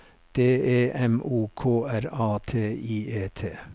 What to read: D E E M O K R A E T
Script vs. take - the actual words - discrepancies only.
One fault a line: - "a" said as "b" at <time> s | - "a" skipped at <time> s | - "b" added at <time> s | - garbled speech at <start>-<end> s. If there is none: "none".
- "E" skipped at 0.9 s
- "T I" added at 2.5 s